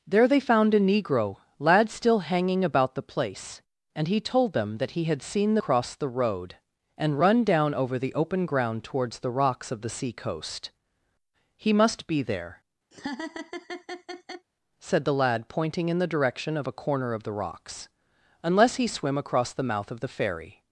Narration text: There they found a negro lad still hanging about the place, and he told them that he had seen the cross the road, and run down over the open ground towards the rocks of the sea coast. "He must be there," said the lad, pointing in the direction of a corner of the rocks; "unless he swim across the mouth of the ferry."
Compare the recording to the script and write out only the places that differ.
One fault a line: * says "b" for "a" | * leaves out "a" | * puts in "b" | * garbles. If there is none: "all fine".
all fine